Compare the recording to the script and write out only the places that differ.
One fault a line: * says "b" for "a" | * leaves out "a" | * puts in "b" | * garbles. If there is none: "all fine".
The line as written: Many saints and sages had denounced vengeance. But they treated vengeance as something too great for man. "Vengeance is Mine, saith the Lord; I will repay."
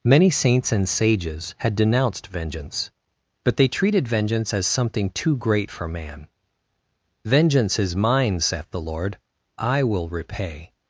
all fine